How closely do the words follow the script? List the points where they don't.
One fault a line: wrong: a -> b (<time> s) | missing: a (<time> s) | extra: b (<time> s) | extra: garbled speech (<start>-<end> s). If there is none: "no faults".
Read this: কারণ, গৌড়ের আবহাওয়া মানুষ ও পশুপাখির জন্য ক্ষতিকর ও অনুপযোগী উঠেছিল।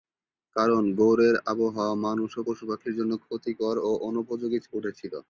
no faults